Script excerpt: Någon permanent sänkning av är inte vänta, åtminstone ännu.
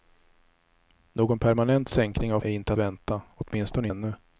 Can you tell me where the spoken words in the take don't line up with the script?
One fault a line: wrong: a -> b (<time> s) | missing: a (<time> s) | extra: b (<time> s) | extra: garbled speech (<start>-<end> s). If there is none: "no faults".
no faults